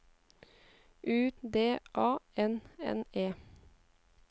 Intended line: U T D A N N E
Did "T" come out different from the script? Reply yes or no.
yes